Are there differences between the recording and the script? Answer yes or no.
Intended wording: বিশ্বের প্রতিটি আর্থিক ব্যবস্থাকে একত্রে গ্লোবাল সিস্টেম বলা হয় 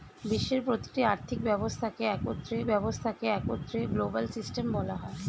yes